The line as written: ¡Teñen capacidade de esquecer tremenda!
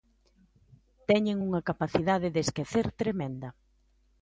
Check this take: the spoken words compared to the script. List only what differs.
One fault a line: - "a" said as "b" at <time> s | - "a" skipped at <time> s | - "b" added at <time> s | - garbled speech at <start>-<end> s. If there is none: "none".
- "unha" added at 1.5 s